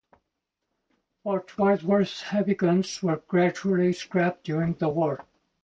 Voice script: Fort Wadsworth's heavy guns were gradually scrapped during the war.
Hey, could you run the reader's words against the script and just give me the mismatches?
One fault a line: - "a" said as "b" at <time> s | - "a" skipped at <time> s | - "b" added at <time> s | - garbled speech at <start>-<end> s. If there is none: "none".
none